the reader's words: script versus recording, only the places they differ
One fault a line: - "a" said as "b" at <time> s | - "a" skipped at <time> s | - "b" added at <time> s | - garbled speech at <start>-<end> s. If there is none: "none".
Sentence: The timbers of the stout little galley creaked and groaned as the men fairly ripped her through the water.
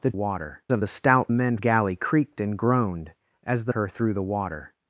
- "timbers" said as "water" at 0.1 s
- "little" said as "men" at 1.3 s
- "men fairly ripped" skipped at 3.7 s